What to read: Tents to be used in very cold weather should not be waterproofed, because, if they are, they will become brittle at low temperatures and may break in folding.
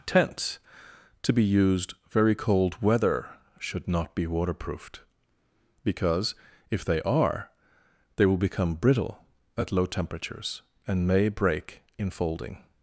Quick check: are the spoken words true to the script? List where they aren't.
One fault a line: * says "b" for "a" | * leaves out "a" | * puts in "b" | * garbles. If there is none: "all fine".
* leaves out "in"